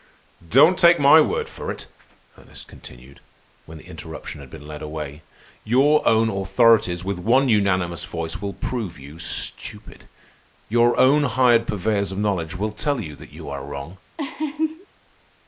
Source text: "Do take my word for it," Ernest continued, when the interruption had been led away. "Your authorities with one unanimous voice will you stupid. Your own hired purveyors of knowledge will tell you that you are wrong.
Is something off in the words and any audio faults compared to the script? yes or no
yes